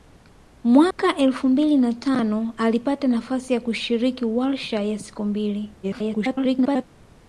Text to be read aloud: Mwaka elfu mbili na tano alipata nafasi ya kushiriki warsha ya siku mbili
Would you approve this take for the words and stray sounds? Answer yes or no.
no